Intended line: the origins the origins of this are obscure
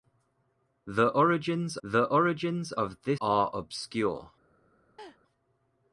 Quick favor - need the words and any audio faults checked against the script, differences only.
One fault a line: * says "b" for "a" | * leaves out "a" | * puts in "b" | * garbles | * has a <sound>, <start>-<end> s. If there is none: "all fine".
* has a laugh, 5.0-5.2 s